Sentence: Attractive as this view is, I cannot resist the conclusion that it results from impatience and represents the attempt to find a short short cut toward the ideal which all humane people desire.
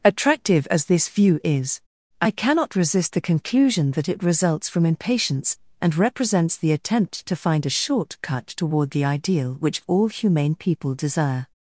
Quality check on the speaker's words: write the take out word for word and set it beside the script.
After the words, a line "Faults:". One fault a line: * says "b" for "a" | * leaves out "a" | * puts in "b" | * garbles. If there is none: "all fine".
Attractive as this view is, I cannot resist the conclusion that it results from impatience and represents the attempt to find a short cut toward the ideal which all humane people desire.
Faults:
* leaves out "short"